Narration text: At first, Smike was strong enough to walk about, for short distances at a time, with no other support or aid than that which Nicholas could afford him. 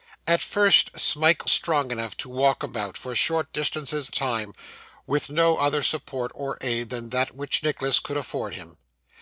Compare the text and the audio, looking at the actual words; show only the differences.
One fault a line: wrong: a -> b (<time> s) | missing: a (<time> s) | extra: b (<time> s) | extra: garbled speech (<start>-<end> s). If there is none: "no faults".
missing: was (1.5 s)
missing: at (4.1 s)